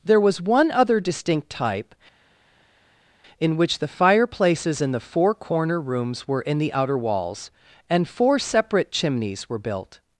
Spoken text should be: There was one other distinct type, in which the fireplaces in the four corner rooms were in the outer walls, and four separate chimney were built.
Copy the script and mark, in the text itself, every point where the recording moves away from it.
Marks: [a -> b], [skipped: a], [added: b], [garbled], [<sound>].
There was one other distinct type, in which the fireplaces in the four corner rooms were in the outer walls, and four separate [chimney -> chimneys] were built.